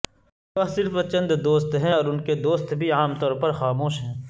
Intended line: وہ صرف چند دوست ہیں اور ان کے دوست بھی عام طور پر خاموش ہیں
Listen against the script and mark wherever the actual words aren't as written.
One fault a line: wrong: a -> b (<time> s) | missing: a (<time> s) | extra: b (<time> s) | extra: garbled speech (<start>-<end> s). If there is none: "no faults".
no faults